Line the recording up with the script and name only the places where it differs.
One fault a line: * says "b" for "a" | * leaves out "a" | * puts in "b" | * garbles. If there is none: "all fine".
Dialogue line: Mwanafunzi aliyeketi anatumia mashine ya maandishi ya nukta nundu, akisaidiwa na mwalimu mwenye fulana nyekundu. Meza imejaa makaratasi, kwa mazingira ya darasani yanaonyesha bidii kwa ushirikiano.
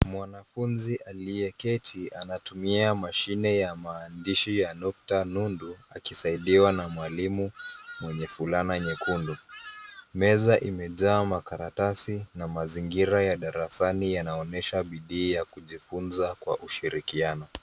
* says "na" for "kwa"
* puts in "ya kujifunza"